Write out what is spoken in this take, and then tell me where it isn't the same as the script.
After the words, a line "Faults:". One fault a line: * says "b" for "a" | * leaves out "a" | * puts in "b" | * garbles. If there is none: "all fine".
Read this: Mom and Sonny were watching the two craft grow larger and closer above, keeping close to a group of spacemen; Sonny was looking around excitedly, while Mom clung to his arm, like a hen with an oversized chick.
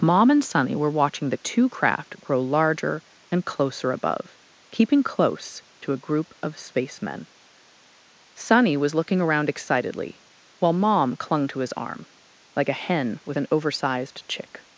Mom and Sonny were watching the two craft grow larger and closer above, keeping close to a group of spacemen; Sonny was looking around excitedly, while Mom clung to his arm, like a hen with an oversized chick.
Faults:
all fine